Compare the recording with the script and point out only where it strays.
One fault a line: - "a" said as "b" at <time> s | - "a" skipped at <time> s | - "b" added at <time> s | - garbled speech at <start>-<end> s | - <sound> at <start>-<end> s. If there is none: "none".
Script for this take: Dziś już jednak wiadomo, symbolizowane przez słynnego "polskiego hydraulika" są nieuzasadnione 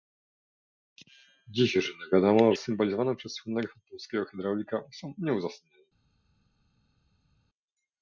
none